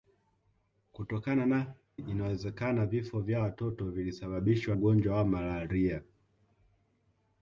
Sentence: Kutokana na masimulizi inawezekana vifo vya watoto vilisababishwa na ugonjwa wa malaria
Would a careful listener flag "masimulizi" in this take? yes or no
yes